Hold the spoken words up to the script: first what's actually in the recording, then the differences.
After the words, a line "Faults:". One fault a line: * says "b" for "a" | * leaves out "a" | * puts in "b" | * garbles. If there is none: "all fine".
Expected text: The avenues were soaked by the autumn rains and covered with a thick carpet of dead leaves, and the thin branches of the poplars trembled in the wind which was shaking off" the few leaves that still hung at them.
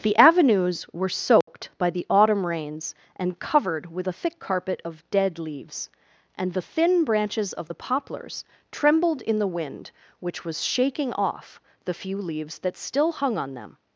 The avenues were soaked by the autumn rains and covered with a thick carpet of dead leaves, and the thin branches of the poplars trembled in the wind which was shaking off" the few leaves that still hung on them.
Faults:
* says "on" for "at"